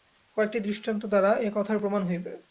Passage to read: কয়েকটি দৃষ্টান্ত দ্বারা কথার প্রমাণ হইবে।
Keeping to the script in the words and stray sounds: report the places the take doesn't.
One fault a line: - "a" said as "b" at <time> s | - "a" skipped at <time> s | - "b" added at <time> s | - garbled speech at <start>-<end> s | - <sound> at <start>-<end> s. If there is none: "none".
- "এ" added at 1.4 s